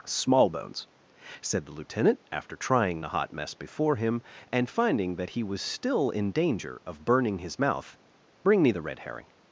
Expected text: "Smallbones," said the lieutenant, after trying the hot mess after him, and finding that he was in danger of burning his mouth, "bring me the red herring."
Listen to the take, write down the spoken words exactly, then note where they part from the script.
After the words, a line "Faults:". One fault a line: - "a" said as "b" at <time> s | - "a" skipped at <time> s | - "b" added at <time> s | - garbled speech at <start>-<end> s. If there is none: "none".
"Smallbones," said the lieutenant, after trying the hot mess before him, and finding that he was still in danger of burning his mouth, "bring me the red herring."
Faults:
- "after" said as "before" at 3.5 s
- "still" added at 5.6 s